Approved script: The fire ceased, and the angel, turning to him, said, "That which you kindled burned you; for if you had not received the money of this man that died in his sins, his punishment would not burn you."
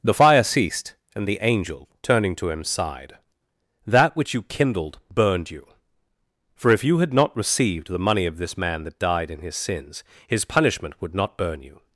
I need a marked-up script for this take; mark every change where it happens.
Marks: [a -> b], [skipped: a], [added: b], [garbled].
The fire ceased, and the angel, turning to him, [said, -> sighed] "That which you kindled burned you; for if you had not received the money of this man that died in his sins, his punishment would not burn you."